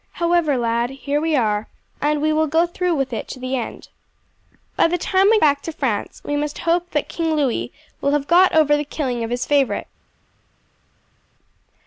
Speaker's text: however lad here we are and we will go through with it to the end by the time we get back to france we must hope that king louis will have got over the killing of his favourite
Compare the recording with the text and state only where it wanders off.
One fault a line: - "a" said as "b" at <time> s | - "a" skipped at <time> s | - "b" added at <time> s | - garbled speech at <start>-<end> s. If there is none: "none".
- "get" skipped at 5.4 s